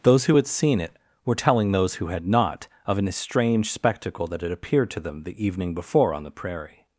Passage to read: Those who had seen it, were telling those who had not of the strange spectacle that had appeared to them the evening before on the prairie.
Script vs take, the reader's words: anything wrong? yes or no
yes